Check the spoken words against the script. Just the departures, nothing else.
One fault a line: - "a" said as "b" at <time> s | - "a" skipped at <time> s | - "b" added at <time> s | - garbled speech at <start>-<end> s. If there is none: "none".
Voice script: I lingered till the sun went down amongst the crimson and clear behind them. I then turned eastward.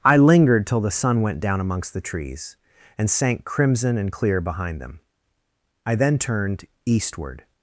- "trees and sank" added at 2.0 s